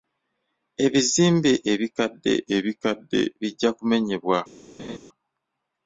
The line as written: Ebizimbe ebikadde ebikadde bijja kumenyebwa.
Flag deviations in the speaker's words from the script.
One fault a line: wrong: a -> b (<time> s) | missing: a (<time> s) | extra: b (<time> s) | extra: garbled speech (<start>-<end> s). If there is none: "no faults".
no faults